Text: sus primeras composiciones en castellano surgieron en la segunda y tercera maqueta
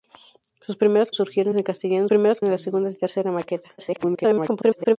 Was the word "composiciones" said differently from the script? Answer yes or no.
yes